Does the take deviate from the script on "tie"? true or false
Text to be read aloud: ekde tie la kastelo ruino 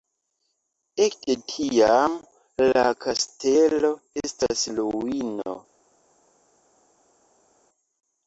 true